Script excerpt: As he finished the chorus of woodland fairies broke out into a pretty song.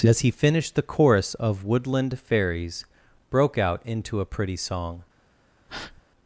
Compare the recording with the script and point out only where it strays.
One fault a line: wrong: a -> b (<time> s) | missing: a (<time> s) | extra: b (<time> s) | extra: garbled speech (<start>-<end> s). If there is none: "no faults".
no faults